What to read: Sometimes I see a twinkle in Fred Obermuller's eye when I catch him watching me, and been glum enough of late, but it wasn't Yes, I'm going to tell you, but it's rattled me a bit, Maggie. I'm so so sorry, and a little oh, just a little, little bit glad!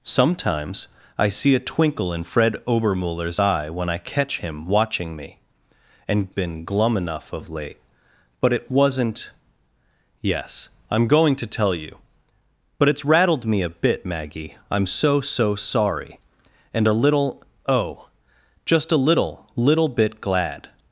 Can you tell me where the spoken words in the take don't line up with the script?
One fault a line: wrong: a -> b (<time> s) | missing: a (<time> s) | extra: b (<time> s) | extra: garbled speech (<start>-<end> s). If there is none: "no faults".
no faults